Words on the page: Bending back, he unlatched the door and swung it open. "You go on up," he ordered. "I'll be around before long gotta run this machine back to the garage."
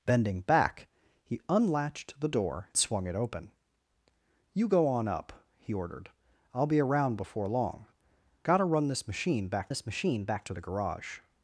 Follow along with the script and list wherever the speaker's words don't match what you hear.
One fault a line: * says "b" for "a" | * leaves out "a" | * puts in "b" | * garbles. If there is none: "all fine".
* leaves out "and"
* puts in "this machine back"